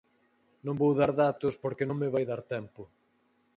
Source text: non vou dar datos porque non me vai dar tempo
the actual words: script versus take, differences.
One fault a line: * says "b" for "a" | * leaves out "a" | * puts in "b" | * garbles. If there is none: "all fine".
all fine